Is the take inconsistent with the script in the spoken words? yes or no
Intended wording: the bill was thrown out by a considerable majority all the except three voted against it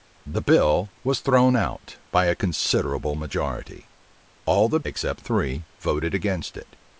no